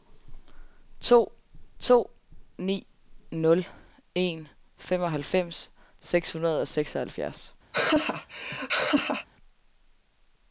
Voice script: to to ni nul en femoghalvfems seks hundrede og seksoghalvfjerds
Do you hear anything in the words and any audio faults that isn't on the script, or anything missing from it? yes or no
yes